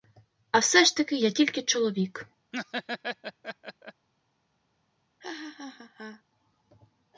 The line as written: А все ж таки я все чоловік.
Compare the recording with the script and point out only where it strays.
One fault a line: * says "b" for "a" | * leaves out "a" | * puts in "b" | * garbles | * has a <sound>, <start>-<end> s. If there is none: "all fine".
* says "тільки" for "все"
* has a laugh, 2.5-4.1 s
* has a laugh, 5.2-6.2 s